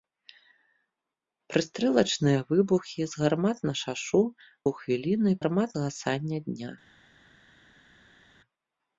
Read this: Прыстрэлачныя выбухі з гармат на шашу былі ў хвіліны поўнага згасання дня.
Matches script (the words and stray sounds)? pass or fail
fail